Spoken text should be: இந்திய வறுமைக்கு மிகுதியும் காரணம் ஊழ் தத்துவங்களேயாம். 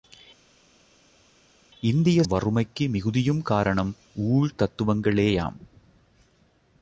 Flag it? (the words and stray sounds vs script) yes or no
no